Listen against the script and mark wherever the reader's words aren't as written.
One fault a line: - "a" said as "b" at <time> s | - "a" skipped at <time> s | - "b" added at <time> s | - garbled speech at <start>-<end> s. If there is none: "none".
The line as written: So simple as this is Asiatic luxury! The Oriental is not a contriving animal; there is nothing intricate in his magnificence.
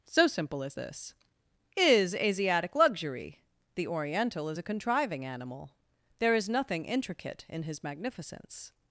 - "not" skipped at 4.6 s